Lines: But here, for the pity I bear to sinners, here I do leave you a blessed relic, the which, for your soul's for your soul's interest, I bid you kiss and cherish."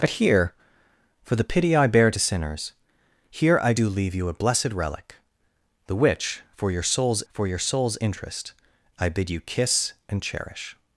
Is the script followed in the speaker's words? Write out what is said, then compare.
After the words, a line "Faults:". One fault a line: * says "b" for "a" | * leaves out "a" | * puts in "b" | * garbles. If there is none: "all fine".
But here, for the pity I bear to sinners, here I do leave you a blessed relic, the which, for your soul's for your soul's interest, I bid you kiss and cherish."
Faults:
all fine